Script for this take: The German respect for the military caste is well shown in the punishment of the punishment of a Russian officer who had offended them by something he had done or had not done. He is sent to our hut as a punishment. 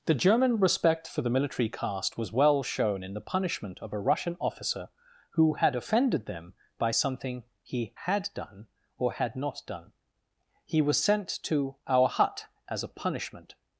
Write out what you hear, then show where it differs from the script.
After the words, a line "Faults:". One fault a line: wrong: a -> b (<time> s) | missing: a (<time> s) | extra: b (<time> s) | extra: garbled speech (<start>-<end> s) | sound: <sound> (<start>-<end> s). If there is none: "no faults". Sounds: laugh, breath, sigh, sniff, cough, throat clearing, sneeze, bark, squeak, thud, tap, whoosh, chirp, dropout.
The German respect for the military caste was well shown in the punishment of a Russian officer who had offended them by something he had done or had not done. He was sent to our hut as a punishment.
Faults:
wrong: is -> was (2.2 s)
missing: the punishment of (3.9 s)
wrong: is -> was (10.8 s)